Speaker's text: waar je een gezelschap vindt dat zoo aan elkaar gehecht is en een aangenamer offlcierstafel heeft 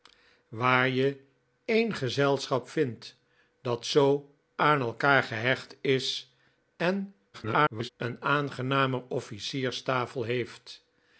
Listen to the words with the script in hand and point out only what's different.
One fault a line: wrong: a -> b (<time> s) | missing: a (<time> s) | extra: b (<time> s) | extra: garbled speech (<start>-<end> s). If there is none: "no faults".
extra: garbled speech (7.3-7.9 s)